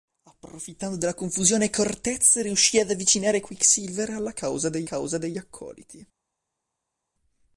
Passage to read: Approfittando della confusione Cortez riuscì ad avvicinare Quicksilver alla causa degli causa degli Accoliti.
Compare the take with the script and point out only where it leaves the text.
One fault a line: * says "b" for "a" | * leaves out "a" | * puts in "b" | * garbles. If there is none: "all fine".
all fine